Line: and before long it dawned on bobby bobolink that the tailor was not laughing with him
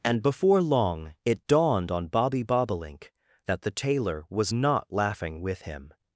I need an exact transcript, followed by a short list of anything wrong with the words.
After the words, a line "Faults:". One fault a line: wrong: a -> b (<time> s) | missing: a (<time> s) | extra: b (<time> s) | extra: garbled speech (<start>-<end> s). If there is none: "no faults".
and before long it dawned on bobby bobolink that the tailor was not laughing with him
Faults:
no faults